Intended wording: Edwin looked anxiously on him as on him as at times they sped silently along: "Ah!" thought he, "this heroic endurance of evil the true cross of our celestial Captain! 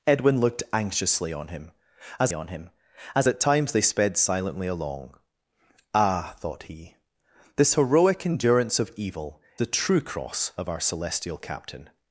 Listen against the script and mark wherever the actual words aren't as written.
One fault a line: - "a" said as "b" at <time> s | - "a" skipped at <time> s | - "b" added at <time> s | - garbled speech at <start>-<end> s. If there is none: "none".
none